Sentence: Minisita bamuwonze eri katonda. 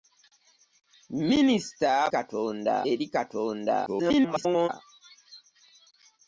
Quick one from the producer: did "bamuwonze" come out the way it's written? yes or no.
no